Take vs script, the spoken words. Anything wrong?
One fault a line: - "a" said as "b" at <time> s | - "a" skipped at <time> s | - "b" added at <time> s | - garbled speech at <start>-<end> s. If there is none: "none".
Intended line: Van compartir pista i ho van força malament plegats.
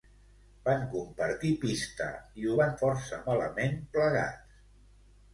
none